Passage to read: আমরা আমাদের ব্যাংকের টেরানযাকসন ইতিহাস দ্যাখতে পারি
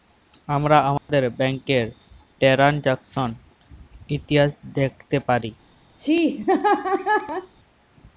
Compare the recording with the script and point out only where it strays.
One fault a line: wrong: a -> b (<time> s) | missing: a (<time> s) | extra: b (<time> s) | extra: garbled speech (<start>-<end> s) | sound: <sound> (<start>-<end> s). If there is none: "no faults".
sound: dropout (1.0-1.1 s)
sound: laugh (6.0-7.5 s)